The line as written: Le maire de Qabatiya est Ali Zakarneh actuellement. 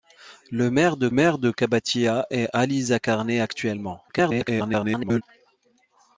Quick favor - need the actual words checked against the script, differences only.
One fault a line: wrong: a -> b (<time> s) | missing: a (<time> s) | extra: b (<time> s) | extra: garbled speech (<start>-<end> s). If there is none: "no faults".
extra: maire de (1.1 s)
extra: garbled speech (4.1-5.2 s)